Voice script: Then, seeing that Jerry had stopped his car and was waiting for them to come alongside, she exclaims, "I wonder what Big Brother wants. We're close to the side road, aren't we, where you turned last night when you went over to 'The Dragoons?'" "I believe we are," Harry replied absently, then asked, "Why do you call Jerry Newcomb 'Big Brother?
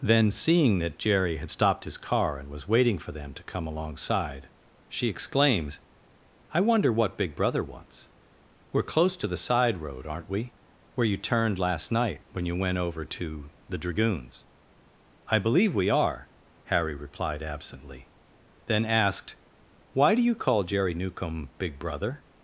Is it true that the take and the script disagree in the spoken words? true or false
false